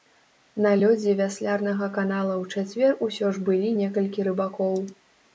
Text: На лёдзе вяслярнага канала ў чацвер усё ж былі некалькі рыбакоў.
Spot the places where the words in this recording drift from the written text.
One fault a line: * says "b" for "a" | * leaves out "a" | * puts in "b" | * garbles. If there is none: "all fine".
all fine